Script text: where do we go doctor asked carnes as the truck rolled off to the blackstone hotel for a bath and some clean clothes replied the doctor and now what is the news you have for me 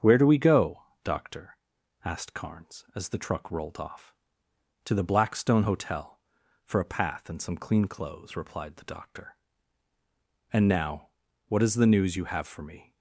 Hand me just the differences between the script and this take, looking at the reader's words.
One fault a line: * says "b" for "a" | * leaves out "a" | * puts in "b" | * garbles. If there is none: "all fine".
* says "path" for "bath"